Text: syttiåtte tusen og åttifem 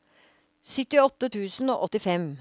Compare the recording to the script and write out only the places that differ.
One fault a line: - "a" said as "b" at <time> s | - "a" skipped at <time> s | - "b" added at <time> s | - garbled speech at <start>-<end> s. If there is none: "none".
none